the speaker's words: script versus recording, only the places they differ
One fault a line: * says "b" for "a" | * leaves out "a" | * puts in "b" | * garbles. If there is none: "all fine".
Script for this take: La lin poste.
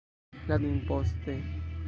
all fine